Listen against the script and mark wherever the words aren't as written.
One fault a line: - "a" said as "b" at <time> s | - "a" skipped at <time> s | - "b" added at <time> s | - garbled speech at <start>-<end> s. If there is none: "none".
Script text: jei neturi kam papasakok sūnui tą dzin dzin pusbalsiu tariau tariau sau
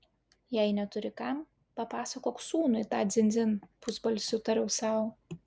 - "tariau" skipped at 4.7 s